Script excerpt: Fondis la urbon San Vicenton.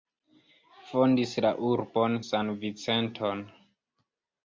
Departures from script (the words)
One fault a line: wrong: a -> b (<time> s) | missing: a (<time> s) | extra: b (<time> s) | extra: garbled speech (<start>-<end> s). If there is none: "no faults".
no faults